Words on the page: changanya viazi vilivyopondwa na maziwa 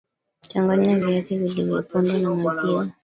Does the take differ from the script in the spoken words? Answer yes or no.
no